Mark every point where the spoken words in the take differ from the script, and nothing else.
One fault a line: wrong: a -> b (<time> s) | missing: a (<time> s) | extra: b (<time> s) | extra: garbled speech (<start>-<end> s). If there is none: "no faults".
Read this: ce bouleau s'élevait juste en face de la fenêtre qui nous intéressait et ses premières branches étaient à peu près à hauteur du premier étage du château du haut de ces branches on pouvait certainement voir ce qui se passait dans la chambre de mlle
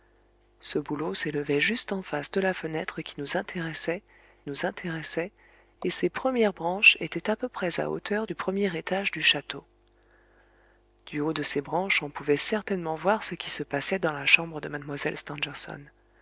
extra: nous intéressait (4.5 s)